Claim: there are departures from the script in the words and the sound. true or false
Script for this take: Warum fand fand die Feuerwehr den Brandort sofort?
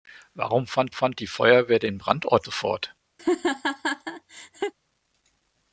true